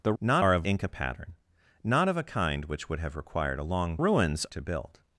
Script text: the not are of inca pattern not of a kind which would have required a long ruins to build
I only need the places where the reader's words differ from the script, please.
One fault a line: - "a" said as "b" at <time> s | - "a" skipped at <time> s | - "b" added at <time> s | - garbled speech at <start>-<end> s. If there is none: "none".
none